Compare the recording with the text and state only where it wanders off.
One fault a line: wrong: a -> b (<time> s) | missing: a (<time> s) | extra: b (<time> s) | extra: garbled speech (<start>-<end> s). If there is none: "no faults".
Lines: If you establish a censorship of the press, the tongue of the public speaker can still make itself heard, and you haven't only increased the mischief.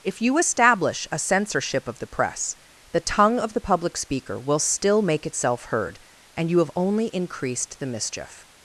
wrong: can -> will (4.4 s)
wrong: haven't -> have (6.6 s)